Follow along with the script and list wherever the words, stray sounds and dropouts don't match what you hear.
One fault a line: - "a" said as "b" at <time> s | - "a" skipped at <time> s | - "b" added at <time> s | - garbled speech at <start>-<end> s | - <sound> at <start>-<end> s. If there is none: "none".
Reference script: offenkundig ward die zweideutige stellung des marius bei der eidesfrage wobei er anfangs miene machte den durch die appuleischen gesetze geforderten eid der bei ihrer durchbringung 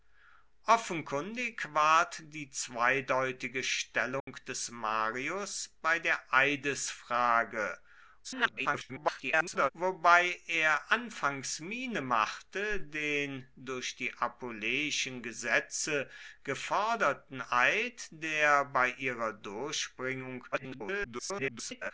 - dropout at 4.2-4.3 s
- garbled speech at 8.2-9.7 s
- garbled speech at 20.5-21.9 s